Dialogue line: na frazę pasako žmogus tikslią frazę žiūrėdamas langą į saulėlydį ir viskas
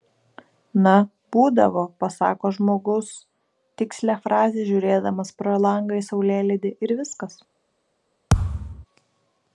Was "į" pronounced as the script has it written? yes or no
yes